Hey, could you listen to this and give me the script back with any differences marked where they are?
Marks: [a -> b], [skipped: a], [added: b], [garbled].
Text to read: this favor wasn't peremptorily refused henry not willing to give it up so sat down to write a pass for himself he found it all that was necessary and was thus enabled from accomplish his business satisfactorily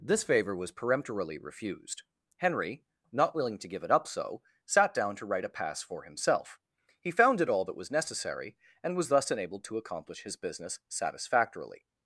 this favor [wasn't -> was] peremptorily refused henry not willing to give it up so sat down to write a pass for himself he found it all that was necessary and was thus enabled [from -> to] accomplish his business satisfactorily